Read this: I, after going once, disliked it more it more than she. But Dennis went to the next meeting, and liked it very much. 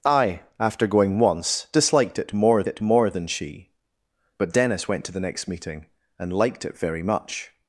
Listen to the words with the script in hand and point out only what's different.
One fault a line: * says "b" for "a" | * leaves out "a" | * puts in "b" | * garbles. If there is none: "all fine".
all fine